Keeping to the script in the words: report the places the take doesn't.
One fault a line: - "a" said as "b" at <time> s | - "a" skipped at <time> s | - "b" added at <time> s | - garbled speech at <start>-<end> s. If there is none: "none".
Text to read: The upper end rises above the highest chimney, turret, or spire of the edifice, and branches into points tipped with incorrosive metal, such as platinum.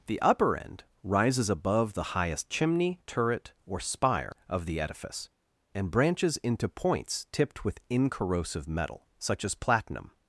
none